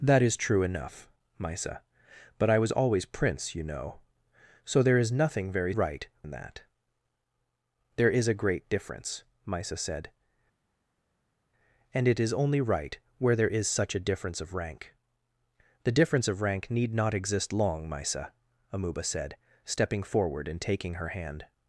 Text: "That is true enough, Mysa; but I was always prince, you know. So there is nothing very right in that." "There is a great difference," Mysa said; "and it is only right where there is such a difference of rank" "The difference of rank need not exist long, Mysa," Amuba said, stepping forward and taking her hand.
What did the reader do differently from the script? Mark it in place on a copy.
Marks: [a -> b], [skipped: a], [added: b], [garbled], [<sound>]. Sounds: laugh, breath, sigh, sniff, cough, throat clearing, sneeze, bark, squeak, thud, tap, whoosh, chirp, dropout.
"That is true enough, Mysa; but I was always prince, you know. So there is nothing very right in that." "There is a great difference," Mysa said; "and it is only right where there is such a difference of rank" "The difference of rank need not exist long, Mysa," Amuba said, stepping forward and taking her hand.